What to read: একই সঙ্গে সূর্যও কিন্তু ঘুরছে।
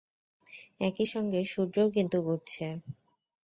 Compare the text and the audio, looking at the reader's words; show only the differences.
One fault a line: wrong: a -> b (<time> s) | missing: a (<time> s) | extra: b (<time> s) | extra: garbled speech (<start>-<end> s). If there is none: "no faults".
no faults